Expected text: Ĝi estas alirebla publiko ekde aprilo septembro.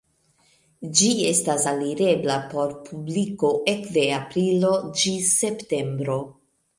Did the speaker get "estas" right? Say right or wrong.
right